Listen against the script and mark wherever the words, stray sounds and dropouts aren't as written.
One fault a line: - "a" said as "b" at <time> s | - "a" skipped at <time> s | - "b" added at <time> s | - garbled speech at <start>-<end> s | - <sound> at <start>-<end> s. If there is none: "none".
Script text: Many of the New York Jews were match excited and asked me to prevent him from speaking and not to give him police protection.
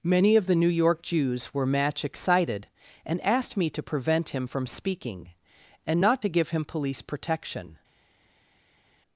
none